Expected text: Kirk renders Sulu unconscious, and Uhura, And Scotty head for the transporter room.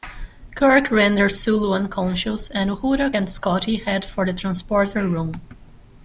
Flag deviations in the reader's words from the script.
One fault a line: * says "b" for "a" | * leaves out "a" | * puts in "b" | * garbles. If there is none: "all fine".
all fine